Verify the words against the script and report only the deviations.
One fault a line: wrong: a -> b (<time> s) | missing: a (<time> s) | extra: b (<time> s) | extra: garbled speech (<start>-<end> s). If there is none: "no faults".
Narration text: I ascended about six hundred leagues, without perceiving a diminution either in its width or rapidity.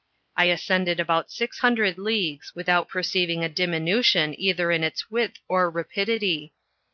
no faults